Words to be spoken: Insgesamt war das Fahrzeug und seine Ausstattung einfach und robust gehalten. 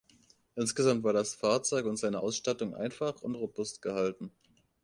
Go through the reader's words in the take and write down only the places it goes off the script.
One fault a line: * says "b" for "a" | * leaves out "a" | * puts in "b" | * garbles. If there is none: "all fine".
all fine